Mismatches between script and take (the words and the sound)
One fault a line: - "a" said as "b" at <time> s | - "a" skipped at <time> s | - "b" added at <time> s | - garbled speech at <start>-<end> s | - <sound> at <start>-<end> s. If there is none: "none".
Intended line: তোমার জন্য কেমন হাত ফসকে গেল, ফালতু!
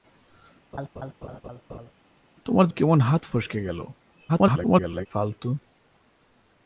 - laugh at 0.7-1.9 s
- "জন্য" skipped at 2.7 s
- garbled speech at 4.3-5.1 s